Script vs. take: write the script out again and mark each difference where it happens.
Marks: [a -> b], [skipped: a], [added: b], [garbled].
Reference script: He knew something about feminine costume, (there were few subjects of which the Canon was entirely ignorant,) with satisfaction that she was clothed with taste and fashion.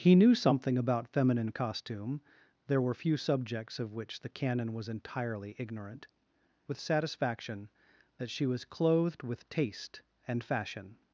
He knew something about feminine costume, (there were few subjects of which the Canon was entirely ignorant,) with satisfaction that she was clothed with taste and fashion.